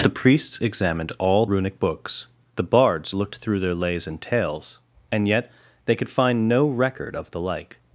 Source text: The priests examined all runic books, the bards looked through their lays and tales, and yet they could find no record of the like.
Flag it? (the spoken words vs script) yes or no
no